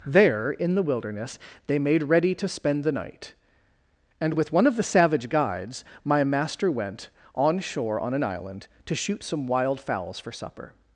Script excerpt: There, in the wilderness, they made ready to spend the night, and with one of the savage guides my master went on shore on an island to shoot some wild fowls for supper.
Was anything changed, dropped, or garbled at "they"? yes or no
no